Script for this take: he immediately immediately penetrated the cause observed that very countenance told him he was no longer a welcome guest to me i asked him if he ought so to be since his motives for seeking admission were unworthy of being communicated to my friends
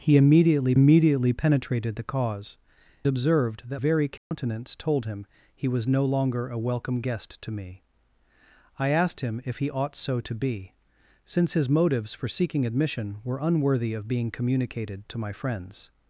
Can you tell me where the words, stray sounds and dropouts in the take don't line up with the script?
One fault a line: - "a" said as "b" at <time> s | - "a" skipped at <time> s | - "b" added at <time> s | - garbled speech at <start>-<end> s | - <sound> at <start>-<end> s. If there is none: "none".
- dropout at 4.2-4.3 s